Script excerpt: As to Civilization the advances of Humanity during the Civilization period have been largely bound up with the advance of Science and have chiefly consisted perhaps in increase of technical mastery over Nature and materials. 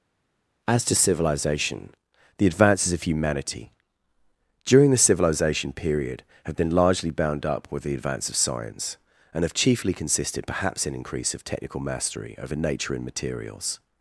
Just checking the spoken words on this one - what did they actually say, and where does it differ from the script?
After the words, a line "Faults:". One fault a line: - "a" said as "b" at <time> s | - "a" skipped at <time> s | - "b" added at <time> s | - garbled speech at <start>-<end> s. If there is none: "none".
As to Civilization the advances of Humanity during the Civilization period have been largely bound up with the advance of Science and have chiefly consisted perhaps in increase of technical mastery over Nature and materials.
Faults:
none